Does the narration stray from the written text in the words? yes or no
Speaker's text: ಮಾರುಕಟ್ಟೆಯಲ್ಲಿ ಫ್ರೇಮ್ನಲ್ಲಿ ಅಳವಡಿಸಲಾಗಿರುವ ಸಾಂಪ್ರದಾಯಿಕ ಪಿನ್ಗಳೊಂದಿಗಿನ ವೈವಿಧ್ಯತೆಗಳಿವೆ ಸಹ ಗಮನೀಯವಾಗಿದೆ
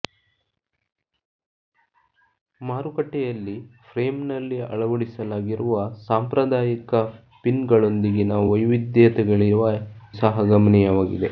no